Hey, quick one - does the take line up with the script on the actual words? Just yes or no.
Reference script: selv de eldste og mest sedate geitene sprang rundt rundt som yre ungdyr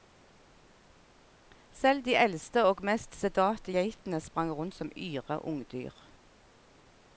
no